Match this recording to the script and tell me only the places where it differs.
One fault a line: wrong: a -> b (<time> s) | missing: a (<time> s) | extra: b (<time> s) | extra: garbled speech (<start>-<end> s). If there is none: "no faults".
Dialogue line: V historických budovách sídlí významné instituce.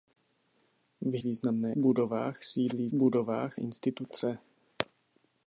wrong: historických -> významné (1.2 s)
wrong: významné -> budovách (2.9 s)